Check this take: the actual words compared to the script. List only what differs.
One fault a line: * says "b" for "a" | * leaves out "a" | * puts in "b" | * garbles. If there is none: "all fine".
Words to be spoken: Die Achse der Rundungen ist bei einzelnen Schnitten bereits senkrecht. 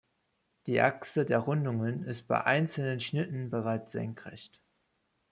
all fine